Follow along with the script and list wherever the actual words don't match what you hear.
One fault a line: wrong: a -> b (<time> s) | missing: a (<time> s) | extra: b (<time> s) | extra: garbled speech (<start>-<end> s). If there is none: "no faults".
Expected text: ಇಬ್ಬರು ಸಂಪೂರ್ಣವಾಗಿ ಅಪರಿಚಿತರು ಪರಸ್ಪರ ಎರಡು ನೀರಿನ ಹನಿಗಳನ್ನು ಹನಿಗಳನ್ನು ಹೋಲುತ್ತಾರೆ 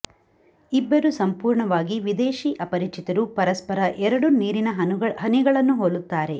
extra: ವಿದೇಶಿ (2.0 s)
missing: ಹನಿಗಳನ್ನು (5.7 s)